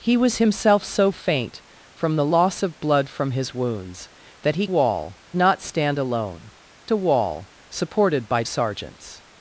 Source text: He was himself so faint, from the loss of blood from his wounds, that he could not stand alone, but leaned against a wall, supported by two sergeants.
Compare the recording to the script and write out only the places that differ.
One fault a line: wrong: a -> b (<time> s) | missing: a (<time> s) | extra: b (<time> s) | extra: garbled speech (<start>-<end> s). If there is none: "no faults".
wrong: could -> wall (4.6 s)
missing: but leaned against (6.5 s)
missing: two (8.4 s)